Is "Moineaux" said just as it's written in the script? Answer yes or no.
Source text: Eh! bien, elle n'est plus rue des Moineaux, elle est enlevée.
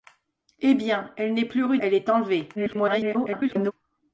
no